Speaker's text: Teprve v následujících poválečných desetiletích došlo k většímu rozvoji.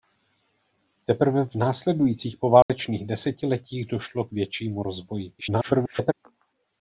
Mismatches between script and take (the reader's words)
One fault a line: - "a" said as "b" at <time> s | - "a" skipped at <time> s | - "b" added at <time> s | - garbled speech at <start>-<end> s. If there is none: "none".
- garbled speech at 5.4-6.1 s